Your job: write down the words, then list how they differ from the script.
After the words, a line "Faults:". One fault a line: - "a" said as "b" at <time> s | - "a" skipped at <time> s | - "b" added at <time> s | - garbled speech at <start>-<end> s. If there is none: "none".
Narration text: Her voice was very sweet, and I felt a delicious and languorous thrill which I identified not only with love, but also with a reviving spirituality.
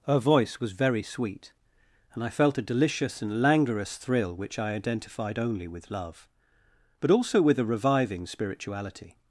Her voice was very sweet, and I felt a delicious and languorous thrill which I identified only with love, but also with a reviving spirituality.
Faults:
- "not" skipped at 5.4 s